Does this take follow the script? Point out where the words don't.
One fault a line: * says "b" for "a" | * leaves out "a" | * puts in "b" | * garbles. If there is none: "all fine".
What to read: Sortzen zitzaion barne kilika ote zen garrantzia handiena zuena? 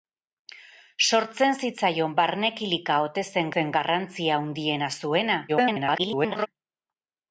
* puts in "zen"
* garbles